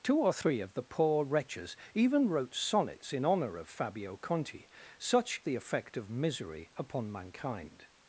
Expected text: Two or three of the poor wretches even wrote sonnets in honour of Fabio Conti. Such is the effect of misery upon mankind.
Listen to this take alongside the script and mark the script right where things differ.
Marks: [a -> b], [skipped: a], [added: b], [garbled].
Two or three of the poor wretches even wrote sonnets in honour of Fabio Conti. Such [skipped: is] the effect of misery upon mankind.